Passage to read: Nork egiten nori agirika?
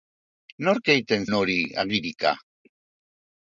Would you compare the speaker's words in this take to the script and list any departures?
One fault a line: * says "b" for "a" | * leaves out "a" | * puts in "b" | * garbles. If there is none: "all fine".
all fine